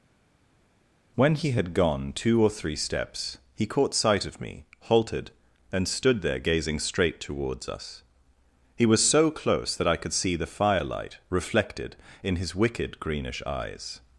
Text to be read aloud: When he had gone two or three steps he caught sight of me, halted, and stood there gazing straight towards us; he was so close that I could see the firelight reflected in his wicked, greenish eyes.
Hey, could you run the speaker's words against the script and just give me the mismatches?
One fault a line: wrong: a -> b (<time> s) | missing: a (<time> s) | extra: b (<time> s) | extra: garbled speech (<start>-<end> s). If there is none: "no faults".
no faults